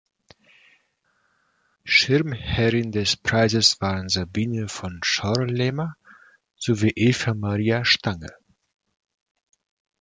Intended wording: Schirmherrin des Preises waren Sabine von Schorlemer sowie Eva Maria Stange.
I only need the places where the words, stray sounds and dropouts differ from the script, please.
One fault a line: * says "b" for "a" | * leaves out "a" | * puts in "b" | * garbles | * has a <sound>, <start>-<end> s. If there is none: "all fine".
all fine